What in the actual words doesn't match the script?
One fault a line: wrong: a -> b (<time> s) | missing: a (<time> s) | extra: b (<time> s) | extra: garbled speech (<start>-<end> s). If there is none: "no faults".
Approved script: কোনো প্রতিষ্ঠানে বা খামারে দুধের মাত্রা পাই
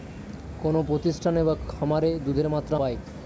no faults